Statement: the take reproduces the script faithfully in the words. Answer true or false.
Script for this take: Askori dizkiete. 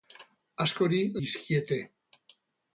true